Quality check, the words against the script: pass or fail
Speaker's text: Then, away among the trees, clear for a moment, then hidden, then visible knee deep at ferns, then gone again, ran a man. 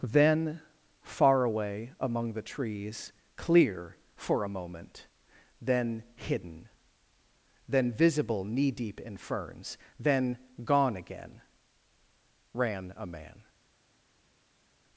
fail